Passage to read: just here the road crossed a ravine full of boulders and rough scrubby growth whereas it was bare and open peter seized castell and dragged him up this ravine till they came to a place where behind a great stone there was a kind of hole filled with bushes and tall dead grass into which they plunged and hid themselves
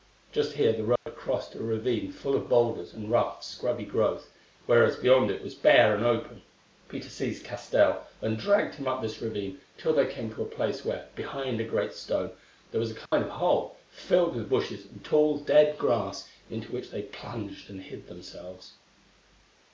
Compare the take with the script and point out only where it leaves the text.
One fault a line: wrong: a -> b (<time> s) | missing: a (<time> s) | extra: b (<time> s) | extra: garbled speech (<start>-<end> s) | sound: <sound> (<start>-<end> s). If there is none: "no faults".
sound: dropout (1.0-1.1 s)
extra: beyond (5.0 s)
sound: dropout (13.1-13.1 s)